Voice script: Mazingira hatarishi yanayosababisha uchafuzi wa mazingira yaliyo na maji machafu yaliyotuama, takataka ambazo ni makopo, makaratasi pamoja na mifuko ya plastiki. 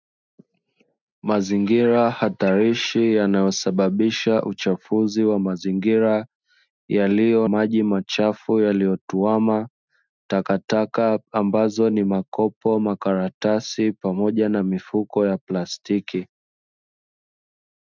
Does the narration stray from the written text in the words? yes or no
yes